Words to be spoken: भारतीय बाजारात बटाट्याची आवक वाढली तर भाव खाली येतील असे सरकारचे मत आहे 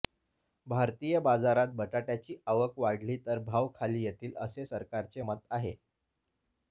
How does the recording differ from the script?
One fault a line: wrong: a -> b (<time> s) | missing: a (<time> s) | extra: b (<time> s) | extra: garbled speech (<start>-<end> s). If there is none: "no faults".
no faults